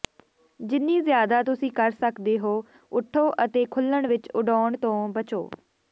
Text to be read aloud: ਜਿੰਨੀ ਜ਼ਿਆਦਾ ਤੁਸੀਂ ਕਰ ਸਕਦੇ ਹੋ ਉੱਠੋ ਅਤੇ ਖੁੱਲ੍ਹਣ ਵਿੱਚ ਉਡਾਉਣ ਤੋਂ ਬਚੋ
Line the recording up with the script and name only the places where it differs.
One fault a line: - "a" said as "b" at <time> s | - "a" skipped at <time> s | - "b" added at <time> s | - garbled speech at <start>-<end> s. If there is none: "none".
none